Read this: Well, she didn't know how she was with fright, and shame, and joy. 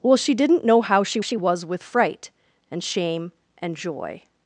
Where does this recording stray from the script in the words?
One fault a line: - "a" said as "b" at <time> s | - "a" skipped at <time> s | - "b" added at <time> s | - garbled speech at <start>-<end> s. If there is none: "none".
- "she" added at 1.2 s